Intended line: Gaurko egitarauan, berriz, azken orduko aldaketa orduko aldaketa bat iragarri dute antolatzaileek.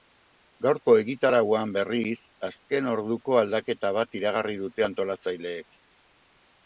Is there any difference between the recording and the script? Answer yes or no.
yes